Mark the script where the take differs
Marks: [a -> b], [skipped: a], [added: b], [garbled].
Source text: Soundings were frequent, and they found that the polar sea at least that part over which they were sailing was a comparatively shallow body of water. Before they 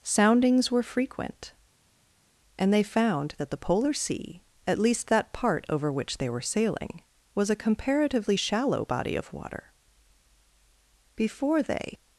Soundings were frequent, and they found that the polar sea at least that part over which they were sailing was a comparatively shallow body of water. Before they